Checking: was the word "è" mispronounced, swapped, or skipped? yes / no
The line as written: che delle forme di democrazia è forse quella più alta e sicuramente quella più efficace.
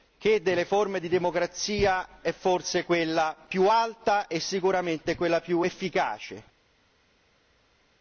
no